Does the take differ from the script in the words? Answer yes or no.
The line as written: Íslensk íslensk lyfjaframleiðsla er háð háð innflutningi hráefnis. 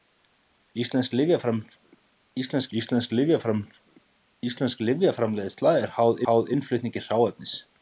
no